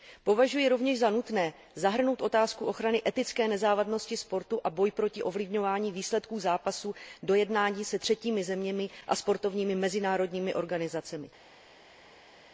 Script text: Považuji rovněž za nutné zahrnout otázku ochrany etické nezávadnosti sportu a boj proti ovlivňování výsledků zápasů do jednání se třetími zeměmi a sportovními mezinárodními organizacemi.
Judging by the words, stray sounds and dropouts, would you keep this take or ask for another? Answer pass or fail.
pass